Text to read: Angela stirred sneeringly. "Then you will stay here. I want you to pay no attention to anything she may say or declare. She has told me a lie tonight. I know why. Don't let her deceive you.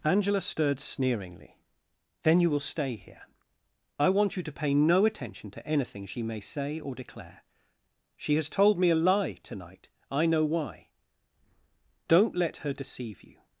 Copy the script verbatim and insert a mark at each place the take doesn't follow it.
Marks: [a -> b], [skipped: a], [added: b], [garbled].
Angela stirred sneeringly. "Then you will stay here. I want you to pay no attention to anything she may say or declare. She has told me a lie tonight. I know why. Don't let her deceive you.